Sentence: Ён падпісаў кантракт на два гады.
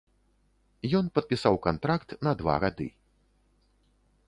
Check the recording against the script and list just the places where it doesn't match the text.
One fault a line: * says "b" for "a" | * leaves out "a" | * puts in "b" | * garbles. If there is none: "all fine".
all fine